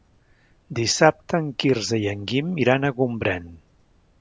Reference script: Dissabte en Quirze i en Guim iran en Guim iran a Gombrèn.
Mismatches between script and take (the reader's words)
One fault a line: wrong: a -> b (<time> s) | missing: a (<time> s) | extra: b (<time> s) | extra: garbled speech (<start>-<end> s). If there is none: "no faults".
missing: en Guim iran (2.9 s)